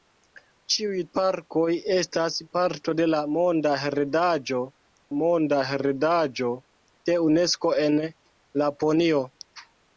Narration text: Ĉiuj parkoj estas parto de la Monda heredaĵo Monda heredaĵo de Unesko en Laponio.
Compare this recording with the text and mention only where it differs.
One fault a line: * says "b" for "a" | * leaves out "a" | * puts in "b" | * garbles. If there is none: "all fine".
all fine